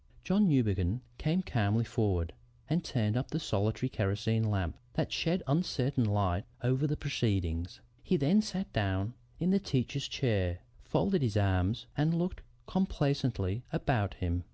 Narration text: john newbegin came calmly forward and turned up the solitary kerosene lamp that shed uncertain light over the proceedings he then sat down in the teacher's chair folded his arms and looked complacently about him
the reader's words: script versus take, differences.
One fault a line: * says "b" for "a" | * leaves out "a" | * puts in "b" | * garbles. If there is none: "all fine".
all fine